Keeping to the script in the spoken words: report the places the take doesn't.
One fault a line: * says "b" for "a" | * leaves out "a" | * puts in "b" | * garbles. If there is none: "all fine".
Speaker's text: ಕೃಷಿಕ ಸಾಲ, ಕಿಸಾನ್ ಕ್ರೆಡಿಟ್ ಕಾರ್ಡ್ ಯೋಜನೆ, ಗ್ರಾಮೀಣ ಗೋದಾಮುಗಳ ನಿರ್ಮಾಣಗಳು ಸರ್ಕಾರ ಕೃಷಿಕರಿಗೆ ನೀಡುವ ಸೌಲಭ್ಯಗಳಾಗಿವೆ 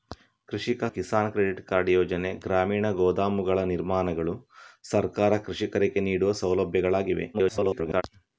* leaves out "ಸಾಲ"
* garbles